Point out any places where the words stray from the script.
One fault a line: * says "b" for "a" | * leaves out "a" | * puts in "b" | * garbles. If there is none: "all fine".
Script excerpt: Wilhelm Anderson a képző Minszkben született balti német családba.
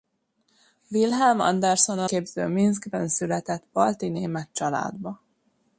all fine